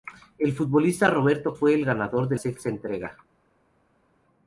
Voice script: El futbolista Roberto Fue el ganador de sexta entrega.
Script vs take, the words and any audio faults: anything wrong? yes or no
no